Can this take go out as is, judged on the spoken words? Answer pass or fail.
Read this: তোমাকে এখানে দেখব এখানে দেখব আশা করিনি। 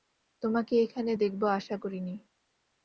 fail